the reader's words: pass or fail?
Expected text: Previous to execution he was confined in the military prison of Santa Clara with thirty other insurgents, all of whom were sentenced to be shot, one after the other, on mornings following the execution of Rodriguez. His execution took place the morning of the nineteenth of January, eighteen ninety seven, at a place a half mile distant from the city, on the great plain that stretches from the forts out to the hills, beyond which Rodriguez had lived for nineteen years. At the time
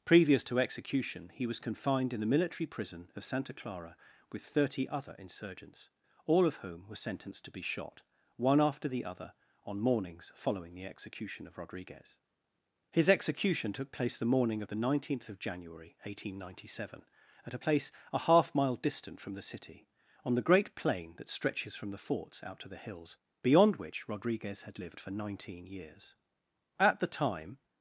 pass